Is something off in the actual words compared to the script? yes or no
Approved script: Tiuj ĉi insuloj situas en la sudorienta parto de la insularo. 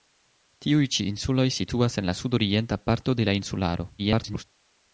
yes